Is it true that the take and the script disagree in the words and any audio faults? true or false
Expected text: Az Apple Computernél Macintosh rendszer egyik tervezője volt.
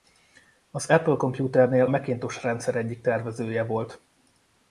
false